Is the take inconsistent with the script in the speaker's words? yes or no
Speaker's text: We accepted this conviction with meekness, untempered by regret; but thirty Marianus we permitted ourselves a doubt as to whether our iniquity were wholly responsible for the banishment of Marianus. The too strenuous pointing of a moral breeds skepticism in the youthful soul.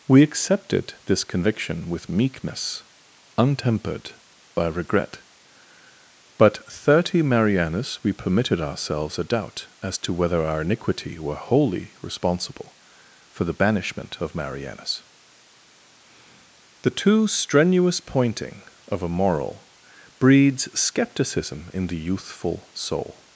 no